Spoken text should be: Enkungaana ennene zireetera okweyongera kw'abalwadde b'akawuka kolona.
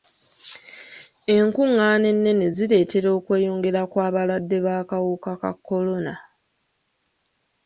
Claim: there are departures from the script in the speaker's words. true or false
true